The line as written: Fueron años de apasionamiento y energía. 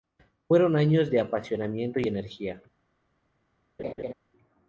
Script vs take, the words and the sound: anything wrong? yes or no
yes